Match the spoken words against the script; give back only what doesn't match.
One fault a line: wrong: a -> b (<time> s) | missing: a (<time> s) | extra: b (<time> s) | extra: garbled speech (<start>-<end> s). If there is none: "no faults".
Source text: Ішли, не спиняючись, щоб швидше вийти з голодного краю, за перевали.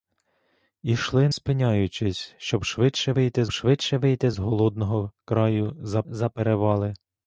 missing: не (1.3 s)
extra: швидше вийти (3.5 s)
extra: за (6.1 s)